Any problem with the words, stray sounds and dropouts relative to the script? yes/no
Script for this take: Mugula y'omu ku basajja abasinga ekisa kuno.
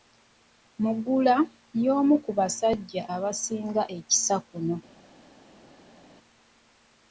no